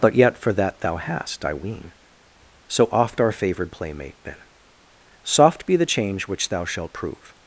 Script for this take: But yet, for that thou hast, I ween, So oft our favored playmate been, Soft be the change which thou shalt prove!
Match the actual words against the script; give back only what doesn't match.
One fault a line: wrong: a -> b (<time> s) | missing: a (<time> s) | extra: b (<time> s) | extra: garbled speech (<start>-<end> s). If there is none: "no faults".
no faults